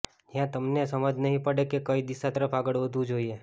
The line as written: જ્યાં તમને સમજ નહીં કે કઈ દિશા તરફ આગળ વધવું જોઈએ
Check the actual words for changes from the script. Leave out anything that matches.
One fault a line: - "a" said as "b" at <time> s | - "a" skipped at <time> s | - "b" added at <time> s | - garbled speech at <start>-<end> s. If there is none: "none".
- "પડે" added at 1.4 s